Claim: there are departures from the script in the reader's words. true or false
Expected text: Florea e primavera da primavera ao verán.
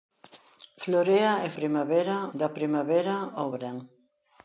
false